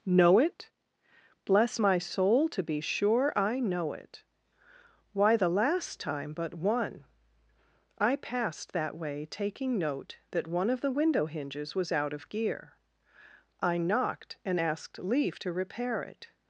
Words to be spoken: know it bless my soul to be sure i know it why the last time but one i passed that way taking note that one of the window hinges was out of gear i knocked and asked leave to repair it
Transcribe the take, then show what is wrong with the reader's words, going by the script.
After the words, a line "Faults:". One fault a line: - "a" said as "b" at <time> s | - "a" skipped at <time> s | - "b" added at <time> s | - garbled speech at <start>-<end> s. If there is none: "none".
know it bless my soul to be sure i know it why the last time but one i passed that way taking note that one of the window hinges was out of gear i knocked and asked leave to repair it
Faults:
none